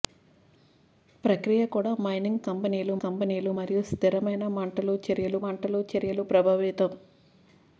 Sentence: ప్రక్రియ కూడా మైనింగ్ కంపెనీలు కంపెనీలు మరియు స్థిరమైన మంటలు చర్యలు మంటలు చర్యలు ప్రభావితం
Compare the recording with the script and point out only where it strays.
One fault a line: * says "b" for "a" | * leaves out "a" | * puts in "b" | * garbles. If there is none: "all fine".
all fine